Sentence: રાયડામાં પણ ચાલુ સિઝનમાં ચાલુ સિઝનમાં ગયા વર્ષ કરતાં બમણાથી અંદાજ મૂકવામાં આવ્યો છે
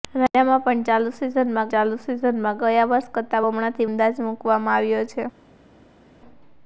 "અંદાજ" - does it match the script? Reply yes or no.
yes